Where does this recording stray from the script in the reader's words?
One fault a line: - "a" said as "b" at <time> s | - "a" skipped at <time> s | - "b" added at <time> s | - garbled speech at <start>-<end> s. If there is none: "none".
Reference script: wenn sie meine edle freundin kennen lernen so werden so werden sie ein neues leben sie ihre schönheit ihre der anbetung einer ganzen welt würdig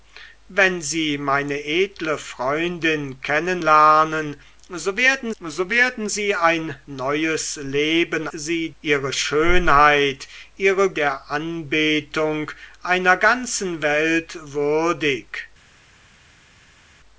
none